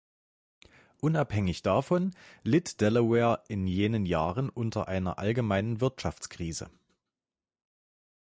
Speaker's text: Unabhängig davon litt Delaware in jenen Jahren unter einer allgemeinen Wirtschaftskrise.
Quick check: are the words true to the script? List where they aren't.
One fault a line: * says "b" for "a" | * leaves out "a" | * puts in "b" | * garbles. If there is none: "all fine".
all fine